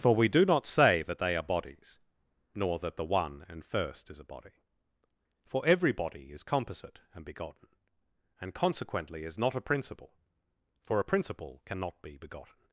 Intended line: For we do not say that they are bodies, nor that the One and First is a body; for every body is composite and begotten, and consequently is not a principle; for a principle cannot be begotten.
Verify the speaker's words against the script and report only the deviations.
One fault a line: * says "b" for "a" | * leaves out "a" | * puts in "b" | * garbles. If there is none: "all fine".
all fine